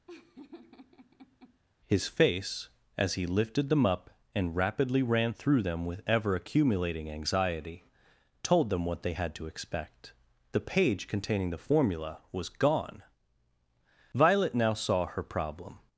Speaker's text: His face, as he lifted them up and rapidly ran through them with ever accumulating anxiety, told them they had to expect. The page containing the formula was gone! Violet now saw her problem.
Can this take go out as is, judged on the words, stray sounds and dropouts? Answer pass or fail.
fail